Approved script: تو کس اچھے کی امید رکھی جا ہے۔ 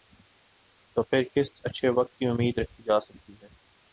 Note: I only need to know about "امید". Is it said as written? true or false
true